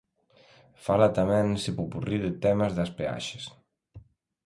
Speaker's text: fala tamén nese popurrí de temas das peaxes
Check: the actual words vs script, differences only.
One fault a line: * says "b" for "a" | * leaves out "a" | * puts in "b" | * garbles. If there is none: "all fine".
all fine